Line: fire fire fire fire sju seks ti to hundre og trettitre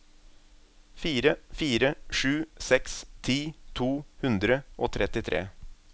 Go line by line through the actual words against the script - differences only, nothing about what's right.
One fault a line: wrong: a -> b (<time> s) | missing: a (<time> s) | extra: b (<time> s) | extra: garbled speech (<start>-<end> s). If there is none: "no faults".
missing: fire fire (1.9 s)